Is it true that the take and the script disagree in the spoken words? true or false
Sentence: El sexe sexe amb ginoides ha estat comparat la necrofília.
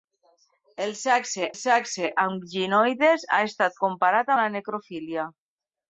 false